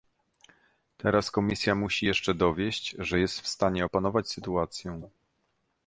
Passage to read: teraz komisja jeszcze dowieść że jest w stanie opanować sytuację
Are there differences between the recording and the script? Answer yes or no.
yes